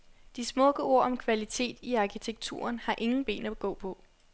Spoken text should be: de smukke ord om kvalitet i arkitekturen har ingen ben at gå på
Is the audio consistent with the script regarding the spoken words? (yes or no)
yes